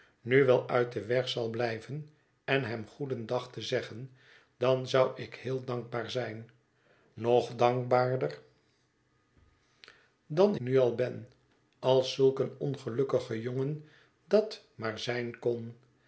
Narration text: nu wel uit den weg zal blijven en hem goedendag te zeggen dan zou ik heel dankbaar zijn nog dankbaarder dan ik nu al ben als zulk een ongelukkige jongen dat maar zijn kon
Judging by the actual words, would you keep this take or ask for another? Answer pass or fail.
fail